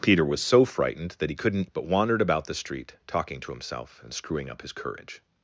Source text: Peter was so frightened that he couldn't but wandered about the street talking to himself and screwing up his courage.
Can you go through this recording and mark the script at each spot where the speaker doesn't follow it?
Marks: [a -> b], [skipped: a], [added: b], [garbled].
Peter was so frightened that he couldn't but wandered about the street talking to himself and screwing up his courage.